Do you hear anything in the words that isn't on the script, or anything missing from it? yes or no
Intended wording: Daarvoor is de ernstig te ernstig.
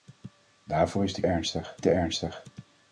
no